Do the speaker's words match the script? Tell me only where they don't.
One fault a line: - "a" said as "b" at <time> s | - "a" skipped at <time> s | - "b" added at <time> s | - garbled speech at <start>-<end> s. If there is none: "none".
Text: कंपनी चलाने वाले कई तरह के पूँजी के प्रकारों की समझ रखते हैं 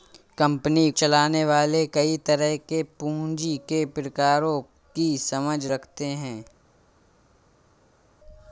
none